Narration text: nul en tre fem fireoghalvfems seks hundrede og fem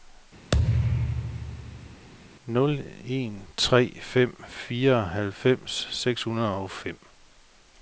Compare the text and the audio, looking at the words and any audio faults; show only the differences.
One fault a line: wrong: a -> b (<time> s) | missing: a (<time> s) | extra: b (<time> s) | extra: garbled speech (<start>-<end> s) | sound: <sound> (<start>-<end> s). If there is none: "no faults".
sound: thud (0.5-2.1 s)